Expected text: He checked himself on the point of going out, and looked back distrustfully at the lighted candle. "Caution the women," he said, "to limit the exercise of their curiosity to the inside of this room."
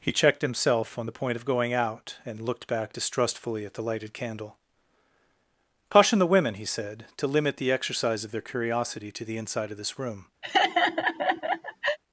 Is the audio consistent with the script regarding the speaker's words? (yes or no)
yes